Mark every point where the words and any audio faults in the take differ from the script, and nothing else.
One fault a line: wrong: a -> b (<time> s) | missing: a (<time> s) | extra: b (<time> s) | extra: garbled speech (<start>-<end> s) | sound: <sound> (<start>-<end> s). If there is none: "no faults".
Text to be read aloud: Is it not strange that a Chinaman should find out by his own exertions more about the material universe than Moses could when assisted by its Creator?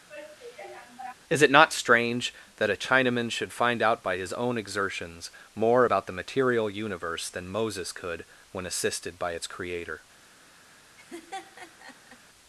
sound: sigh (0.1-1.1 s)
sound: laugh (11.0-12.2 s)